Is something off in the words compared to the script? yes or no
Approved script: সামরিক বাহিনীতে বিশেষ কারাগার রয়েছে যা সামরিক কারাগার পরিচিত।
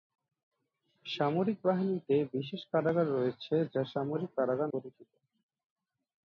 no